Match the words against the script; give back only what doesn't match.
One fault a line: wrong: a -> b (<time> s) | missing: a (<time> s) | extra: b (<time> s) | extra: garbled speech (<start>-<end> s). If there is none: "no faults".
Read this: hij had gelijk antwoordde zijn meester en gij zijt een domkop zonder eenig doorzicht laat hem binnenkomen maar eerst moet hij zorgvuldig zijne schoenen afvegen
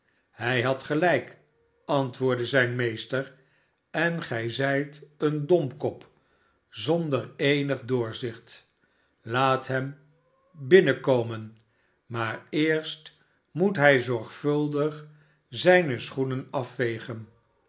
no faults